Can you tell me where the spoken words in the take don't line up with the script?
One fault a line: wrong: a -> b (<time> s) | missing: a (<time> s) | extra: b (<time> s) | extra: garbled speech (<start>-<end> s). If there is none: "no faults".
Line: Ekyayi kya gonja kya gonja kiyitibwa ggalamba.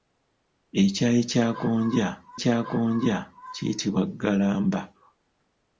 no faults